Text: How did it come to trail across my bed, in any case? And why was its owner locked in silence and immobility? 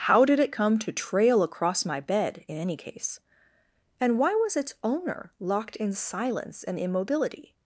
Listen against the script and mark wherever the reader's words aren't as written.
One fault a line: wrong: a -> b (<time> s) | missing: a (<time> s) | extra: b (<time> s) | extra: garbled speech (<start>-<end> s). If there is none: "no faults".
no faults